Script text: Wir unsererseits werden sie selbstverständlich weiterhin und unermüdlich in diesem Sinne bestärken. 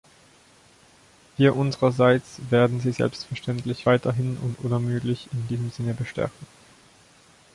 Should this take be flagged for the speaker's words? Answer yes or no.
no